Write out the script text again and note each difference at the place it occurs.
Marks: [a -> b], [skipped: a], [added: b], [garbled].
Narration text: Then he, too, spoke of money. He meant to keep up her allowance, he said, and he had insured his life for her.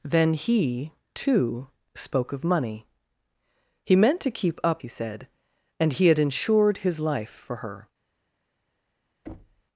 Then he, too, spoke of money. He meant to keep up [skipped: her allowance,] he said, and he had insured his life for her.